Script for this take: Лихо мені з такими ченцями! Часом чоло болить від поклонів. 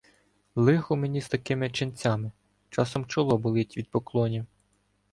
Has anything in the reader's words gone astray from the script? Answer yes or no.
no